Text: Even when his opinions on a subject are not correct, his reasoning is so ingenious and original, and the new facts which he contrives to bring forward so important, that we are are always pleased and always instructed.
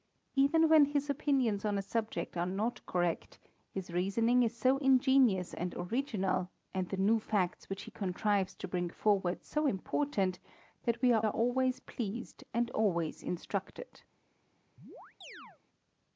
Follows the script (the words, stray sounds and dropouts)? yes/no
no